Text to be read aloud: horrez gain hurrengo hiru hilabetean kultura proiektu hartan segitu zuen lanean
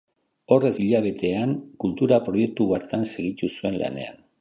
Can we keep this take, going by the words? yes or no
no